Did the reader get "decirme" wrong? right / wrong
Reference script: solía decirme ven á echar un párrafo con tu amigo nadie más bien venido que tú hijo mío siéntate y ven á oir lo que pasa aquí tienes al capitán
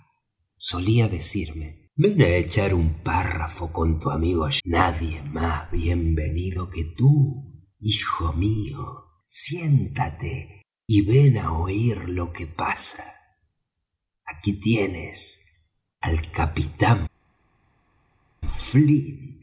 right